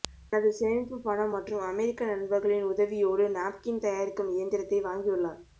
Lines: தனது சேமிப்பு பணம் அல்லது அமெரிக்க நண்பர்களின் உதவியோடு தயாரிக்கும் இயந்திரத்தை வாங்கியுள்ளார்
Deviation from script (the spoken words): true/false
true